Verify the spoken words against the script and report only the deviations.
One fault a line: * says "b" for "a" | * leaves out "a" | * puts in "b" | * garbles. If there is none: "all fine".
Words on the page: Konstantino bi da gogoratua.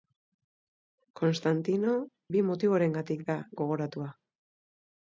* puts in "motiborengatik"